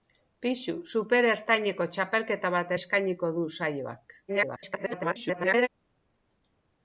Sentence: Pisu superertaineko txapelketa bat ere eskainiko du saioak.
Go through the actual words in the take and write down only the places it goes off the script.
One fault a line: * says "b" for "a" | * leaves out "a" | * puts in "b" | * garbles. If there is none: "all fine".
* leaves out "ere"
* garbles